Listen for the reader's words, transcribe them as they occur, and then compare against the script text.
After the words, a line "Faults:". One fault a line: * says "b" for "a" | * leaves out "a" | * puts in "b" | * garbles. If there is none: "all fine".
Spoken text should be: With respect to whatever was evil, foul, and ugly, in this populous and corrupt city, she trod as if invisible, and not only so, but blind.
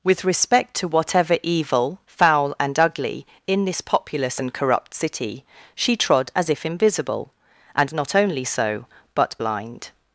With respect to whatever evil, foul, and ugly, in this populous and corrupt city, she trod as if invisible, and not only so, but blind.
Faults:
* leaves out "was"